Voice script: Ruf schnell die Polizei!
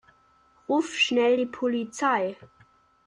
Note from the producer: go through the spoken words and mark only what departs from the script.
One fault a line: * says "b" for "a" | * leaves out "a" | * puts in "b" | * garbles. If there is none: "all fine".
all fine